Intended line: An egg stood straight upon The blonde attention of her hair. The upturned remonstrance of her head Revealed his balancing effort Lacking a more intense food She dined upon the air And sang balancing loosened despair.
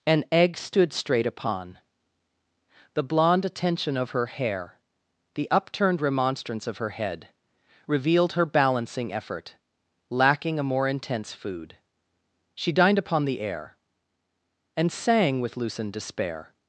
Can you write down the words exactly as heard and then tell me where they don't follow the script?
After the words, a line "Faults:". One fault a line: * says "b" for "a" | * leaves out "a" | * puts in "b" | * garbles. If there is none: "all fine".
An egg stood straight upon The blonde attention of her hair. The upturned remonstrance of her head Revealed her balancing effort Lacking a more intense food She dined upon the air And sang with loosened despair.
Faults:
* says "her" for "his"
* says "with" for "balancing"